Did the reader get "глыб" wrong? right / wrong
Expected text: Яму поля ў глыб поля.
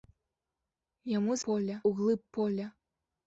right